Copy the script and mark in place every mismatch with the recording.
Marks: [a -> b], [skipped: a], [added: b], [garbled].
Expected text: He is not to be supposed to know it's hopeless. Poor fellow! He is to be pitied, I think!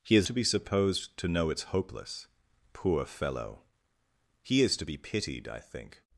He is [skipped: not] to be supposed to know it's hopeless. Poor fellow! He is to be pitied, I think!